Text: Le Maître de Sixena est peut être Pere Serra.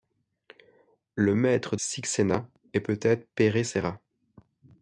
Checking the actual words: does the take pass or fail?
fail